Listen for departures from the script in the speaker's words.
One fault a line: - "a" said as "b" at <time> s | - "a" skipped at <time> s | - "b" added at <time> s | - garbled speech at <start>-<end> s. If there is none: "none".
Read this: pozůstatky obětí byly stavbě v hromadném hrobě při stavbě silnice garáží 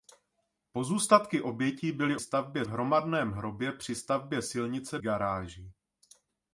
none